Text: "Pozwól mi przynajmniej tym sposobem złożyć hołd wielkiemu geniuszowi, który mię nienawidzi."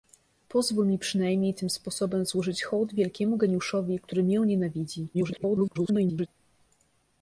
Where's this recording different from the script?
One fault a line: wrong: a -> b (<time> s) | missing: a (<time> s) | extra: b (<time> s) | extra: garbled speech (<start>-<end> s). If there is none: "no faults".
extra: garbled speech (5.1-6.3 s)